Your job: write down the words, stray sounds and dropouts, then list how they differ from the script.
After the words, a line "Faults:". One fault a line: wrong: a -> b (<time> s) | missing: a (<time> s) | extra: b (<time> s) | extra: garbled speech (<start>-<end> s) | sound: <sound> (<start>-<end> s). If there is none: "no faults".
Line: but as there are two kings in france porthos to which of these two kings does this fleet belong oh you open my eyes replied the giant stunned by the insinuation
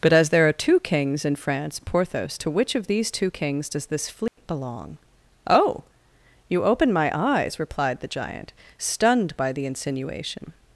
but as there are two kings in france porthos to which of these two kings does this fleet belong oh you open my eyes replied the giant stunned by the insinuation
Faults:
sound: dropout (4.3-4.4 s)